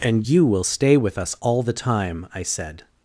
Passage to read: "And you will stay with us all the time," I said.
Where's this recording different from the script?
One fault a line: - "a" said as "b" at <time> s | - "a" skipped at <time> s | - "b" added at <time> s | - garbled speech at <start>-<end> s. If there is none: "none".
none